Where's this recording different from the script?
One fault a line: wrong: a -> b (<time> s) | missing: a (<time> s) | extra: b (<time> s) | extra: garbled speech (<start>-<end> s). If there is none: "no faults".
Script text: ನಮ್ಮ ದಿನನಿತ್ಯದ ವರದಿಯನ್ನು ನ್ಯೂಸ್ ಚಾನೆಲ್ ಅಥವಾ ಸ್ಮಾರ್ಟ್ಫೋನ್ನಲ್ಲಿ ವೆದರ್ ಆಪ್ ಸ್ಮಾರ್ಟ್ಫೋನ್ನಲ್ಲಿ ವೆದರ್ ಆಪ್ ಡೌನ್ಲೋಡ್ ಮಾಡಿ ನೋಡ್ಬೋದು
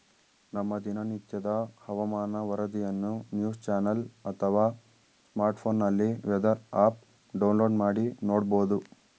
extra: ಹವಾಮಾನ (1.8 s)
missing: ಸ್ಮಾರ್ಟ್ಫೋನ್ನಲ್ಲಿ ವೆದರ್ ಆಪ್ (7.0 s)